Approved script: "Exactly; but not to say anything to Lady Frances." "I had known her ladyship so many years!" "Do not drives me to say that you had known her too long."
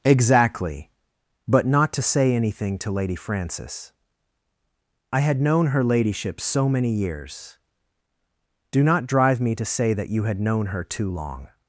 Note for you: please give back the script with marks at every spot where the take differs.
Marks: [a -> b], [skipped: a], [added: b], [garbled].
"Exactly; but not to say anything to Lady Frances." "I had known her ladyship so many years!" "Do not [drives -> drive] me to say that you had known her too long."